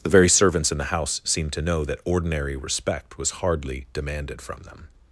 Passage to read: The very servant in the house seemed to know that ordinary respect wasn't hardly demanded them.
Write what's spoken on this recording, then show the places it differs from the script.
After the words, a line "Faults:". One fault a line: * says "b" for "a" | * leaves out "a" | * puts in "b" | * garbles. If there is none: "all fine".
The very servants in the house seemed to know that ordinary respect was hardly demanded from them.
Faults:
* says "servants" for "servant"
* says "was" for "wasn't"
* puts in "from"